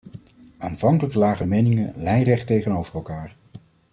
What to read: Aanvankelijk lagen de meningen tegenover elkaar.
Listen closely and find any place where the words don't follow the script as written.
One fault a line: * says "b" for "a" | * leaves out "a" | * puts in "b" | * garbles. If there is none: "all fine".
* puts in "lijnrecht"